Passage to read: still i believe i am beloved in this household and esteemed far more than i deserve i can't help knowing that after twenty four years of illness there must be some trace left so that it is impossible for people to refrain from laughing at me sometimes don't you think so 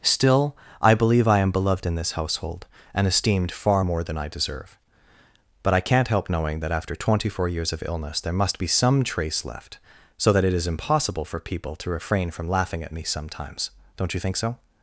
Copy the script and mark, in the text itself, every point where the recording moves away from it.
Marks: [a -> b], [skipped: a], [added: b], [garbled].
still i believe i am beloved in this household and esteemed far more than i deserve [added: but] i can't help knowing that after twenty four years of illness there must be some trace left so that it is impossible for people to refrain from laughing at me sometimes don't you think so